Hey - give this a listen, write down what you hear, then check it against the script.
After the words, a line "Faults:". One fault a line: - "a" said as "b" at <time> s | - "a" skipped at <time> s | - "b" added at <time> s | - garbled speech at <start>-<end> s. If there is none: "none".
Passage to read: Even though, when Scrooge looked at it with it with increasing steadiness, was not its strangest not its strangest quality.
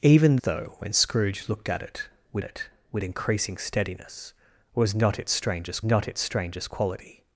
Even though, when Scrooge looked at it with it with increasing steadiness, was not its strangest not its strangest quality.
Faults:
none